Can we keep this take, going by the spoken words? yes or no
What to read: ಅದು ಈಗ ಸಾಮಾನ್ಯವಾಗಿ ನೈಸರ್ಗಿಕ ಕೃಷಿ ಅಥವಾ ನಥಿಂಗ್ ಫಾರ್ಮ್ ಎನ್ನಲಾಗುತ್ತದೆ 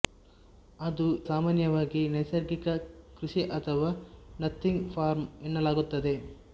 no